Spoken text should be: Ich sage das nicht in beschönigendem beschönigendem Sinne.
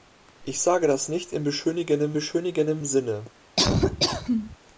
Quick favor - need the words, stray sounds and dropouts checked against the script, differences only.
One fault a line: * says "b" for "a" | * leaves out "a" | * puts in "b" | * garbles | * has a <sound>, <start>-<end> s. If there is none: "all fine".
* has a laugh, 3.6-4.6 s